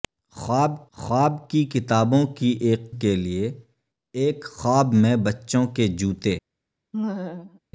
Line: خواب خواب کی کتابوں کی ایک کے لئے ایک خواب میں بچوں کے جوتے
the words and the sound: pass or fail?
fail